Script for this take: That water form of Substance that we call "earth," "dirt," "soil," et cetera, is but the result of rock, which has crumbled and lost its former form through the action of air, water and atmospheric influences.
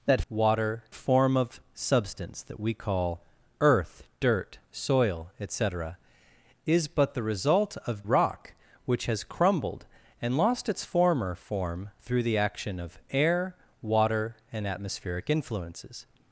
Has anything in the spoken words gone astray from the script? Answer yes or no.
no